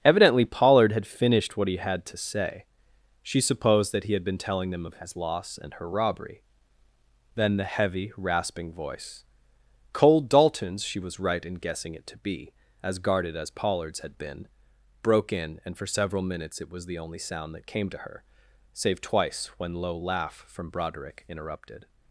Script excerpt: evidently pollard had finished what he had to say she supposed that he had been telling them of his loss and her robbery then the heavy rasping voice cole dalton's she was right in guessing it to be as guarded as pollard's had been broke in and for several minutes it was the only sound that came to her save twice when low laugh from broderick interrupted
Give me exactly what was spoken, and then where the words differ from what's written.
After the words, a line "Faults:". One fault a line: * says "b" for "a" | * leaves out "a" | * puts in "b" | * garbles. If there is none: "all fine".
evidently pollard had finished what he had to say she supposed that he had been telling them of his loss and her robbery then the heavy rasping voice cole dalton's she was right in guessing it to be as guarded as pollard's had been broke in and for several minutes it was the only sound that came to her save twice when low laugh from broderick interrupted
Faults:
all fine